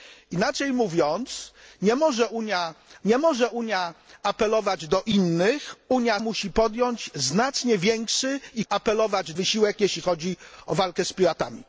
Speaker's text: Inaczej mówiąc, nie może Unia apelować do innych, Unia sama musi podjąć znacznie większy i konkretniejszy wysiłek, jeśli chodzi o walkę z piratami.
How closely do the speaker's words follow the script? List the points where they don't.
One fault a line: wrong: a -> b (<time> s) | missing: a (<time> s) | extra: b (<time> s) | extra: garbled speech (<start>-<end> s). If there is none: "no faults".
extra: nie może Unia (3.0 s)
missing: sama (6.2 s)
wrong: konkretniejszy -> apelować (8.7 s)